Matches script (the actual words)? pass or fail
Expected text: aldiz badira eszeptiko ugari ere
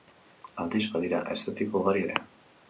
pass